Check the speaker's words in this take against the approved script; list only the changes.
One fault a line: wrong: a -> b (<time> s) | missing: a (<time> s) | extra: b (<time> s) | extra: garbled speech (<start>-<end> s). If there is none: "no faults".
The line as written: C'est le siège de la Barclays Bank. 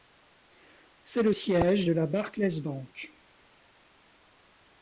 no faults